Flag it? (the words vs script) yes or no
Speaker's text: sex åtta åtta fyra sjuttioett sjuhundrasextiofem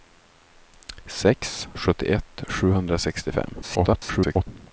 yes